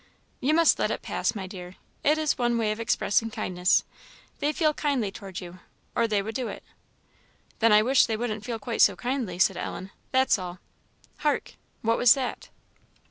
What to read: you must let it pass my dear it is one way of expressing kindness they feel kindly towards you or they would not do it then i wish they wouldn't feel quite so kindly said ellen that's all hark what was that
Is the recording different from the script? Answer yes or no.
yes